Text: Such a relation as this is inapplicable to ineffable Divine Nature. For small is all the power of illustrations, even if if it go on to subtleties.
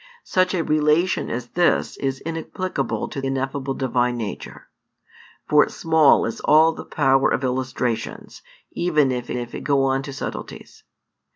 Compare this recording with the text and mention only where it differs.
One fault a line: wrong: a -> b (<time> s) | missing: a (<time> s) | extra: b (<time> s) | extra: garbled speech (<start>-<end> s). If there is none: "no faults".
no faults